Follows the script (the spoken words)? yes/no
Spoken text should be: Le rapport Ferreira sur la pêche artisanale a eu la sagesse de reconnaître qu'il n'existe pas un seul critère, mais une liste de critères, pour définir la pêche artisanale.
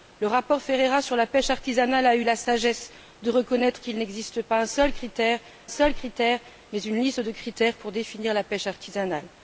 no